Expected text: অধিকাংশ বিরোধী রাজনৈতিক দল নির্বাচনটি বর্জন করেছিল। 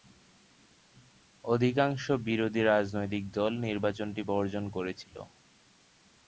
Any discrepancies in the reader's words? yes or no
no